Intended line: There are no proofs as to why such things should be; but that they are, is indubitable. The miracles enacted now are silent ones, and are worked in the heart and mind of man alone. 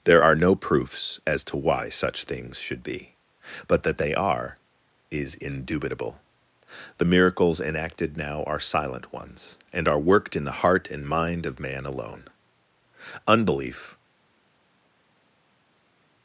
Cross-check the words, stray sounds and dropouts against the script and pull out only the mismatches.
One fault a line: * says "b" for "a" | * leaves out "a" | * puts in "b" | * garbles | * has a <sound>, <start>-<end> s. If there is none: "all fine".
* puts in "Unbelief"